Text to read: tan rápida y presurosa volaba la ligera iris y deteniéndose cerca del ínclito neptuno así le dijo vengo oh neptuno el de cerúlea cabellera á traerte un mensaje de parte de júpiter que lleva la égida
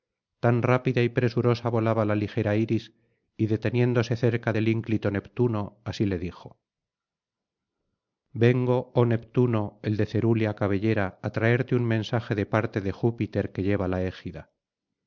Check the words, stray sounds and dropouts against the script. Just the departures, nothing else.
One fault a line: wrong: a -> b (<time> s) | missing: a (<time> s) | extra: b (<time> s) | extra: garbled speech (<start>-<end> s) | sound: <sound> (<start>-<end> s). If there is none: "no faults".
no faults